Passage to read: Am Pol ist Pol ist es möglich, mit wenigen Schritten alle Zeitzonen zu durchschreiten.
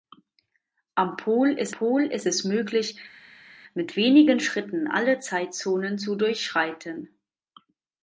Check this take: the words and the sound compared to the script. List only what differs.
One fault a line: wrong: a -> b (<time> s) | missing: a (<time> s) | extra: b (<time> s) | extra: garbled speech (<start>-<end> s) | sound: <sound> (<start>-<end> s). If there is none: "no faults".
no faults